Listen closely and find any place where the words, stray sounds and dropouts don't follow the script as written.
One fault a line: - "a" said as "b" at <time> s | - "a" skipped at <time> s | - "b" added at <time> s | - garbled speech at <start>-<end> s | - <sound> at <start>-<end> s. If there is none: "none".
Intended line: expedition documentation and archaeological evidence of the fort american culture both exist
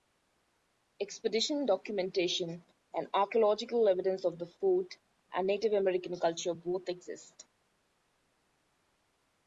- "and native" added at 5.3 s